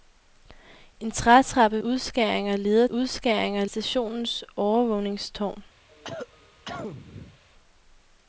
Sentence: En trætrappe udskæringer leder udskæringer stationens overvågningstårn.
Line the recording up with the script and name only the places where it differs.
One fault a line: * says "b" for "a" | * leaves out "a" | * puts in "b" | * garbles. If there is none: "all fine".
all fine